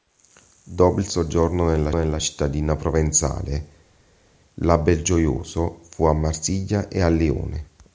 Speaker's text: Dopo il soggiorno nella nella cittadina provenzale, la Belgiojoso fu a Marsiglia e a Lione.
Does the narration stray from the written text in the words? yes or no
no